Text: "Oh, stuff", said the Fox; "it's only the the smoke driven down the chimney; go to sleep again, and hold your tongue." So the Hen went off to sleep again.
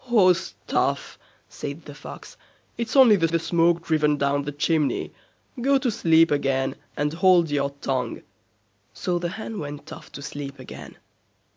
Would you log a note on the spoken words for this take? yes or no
no